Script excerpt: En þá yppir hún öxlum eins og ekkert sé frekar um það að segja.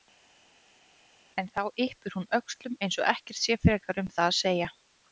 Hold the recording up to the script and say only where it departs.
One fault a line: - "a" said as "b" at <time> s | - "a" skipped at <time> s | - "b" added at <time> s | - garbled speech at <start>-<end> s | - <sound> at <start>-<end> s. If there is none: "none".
none